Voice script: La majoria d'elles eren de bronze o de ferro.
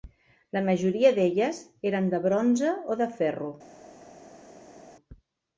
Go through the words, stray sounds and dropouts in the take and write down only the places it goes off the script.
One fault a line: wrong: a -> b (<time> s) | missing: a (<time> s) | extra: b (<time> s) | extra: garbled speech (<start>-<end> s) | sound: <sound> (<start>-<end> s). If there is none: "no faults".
no faults